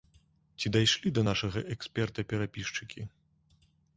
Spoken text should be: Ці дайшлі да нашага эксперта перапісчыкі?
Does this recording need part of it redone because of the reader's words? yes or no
no